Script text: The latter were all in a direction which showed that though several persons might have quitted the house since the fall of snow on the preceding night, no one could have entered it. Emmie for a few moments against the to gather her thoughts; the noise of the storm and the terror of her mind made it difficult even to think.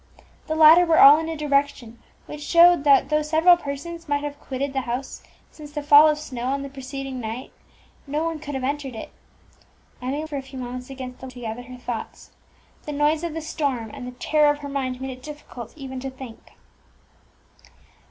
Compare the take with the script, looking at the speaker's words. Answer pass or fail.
pass